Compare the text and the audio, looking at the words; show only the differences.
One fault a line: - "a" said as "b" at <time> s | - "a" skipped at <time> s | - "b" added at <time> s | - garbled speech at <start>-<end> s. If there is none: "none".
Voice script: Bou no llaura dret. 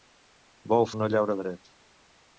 none